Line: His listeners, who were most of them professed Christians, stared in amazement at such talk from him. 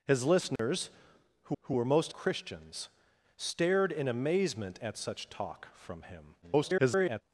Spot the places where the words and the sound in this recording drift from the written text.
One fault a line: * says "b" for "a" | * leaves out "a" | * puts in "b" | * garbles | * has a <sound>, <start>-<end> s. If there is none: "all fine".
* has a dropout, 0.6-0.6 s
* puts in "who"
* leaves out "of them professed"
* garbles